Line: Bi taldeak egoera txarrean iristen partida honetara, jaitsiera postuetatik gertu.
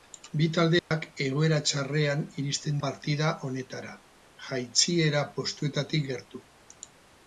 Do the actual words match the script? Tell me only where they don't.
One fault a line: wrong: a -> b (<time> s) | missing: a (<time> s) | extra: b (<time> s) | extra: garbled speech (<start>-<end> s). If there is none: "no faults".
no faults